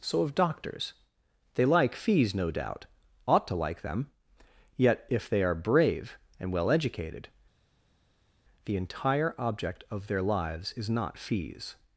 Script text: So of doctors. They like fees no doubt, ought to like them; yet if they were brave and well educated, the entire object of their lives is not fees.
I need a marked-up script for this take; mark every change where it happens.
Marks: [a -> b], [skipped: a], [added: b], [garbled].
So of doctors. They like fees no doubt, ought to like them; yet if they [were -> are] brave and well educated, the entire object of their lives is not fees.